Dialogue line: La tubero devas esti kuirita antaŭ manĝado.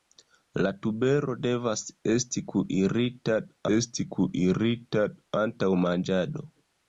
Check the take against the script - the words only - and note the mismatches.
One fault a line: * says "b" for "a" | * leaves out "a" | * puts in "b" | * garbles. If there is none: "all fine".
* puts in "esti kuirita"